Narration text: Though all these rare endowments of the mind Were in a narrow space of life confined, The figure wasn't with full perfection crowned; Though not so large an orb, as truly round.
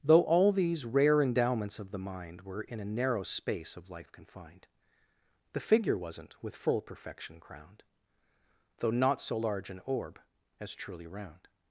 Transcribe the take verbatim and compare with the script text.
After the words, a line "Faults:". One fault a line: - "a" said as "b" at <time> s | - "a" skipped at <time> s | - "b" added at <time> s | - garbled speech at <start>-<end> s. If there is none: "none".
Though all these rare endowments of the mind Were in a narrow space of life confined, The figure wasn't with full perfection crowned; Though not so large an orb, as truly round.
Faults:
none